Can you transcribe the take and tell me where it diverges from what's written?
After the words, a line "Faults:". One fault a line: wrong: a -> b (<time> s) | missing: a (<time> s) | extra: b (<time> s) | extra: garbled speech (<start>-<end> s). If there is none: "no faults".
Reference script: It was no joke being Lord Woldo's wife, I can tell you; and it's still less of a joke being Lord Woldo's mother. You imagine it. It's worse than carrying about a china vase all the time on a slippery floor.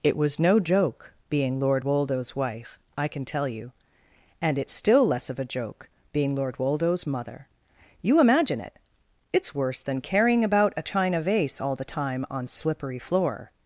It was no joke being Lord Woldo's wife, I can tell you; and it's still less of a joke being Lord Woldo's mother. You imagine it. It's worse than carrying about a china vase all the time on slippery floor.
Faults:
missing: a (12.5 s)